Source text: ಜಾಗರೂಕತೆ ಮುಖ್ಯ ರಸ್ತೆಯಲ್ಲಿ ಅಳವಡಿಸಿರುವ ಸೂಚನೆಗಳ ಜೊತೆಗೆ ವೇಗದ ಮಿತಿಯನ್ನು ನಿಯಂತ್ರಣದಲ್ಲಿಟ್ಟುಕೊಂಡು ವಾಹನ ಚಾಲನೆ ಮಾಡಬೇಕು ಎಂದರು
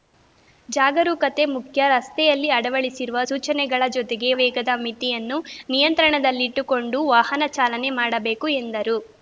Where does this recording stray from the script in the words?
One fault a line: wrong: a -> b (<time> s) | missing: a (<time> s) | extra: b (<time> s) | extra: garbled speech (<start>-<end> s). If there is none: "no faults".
no faults